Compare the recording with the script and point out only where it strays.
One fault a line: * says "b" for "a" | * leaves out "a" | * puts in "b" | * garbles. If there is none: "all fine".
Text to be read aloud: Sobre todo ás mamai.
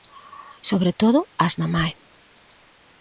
all fine